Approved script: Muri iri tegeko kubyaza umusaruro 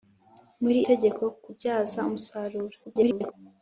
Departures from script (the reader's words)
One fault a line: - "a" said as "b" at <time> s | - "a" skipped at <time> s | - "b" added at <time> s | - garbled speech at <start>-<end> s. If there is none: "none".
- "iri" skipped at 0.8 s
- garbled speech at 2.8-3.3 s